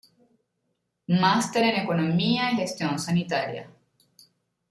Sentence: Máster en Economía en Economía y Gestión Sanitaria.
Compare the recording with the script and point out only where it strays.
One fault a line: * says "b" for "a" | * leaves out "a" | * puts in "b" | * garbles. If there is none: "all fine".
* leaves out "en Economía"